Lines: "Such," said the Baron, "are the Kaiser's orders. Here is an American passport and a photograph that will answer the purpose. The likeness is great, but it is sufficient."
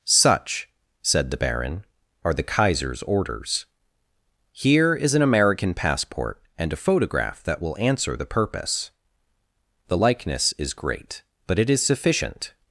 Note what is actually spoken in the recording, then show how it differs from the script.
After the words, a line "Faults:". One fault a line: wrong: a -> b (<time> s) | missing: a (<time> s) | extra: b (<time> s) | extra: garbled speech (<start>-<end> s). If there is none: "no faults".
"Such," said the Baron, "are the Kaiser's orders. Here is an American passport and a photograph that will answer the purpose. The likeness is great, but it is sufficient."
Faults:
no faults